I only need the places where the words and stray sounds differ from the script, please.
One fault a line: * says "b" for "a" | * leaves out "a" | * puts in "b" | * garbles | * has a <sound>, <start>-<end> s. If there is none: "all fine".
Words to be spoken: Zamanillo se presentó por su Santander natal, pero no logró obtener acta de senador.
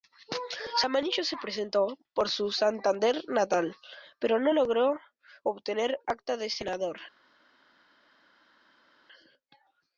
all fine